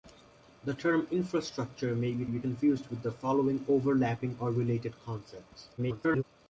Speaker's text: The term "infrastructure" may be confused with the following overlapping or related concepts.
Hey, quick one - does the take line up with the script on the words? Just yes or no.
no